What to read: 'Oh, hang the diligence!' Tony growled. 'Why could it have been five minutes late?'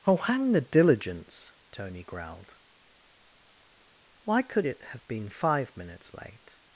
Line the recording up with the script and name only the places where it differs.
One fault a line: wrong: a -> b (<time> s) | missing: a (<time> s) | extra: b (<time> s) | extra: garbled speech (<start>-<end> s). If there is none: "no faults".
no faults